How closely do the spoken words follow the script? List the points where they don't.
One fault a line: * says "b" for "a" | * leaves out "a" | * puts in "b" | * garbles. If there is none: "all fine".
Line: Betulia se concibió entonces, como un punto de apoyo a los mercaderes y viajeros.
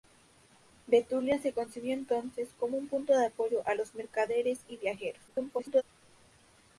* garbles